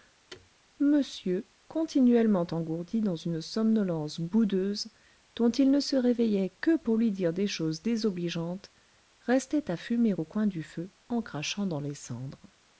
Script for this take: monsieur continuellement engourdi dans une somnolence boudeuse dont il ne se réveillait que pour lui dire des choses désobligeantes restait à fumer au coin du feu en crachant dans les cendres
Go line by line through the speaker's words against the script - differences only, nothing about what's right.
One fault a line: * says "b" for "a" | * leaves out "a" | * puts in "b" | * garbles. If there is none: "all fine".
all fine